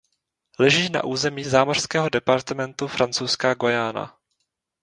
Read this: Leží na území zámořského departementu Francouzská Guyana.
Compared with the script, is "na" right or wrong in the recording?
right